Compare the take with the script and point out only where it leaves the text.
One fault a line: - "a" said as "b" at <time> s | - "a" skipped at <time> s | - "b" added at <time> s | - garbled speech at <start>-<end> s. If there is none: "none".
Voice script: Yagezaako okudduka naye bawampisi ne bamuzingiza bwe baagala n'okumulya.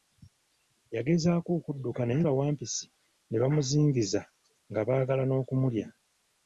- "bwe" said as "nga" at 4.7 s